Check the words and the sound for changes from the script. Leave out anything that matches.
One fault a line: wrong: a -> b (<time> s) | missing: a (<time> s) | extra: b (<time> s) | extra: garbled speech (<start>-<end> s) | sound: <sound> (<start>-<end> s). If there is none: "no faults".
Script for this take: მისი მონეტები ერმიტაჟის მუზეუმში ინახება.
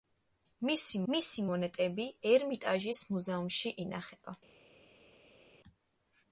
extra: მისი (1.1 s)